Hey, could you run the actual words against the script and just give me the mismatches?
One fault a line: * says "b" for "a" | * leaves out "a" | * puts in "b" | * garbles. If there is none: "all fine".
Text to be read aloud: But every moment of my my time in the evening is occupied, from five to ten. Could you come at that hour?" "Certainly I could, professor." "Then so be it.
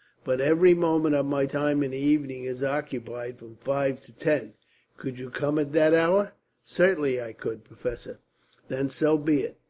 * leaves out "my"